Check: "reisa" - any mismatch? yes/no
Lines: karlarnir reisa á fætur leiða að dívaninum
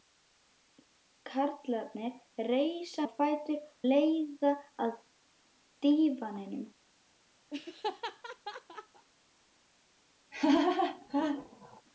no